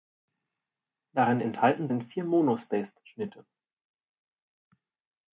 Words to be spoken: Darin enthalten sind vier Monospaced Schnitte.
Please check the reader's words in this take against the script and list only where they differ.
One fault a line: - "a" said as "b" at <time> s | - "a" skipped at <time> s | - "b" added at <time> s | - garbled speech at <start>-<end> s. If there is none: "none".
none